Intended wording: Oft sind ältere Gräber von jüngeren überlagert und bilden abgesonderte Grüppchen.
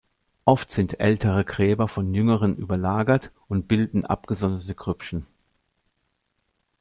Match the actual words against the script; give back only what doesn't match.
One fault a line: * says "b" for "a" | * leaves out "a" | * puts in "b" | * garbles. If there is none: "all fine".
all fine